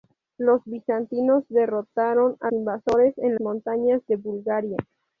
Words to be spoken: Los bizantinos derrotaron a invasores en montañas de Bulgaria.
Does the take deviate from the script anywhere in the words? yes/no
no